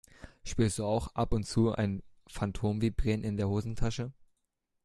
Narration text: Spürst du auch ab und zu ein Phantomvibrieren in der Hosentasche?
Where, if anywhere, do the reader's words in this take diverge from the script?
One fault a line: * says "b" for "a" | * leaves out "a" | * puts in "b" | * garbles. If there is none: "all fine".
all fine